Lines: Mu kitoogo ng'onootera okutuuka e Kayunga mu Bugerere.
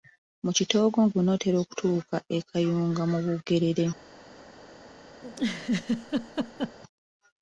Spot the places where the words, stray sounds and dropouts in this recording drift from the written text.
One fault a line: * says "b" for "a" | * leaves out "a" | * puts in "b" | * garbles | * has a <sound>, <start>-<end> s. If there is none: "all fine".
* has a laugh, 5.2-6.8 s